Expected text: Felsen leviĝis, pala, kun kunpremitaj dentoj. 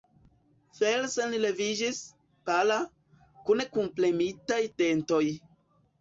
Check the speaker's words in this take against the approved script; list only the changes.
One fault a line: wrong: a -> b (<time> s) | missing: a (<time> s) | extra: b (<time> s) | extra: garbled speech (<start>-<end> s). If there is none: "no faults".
no faults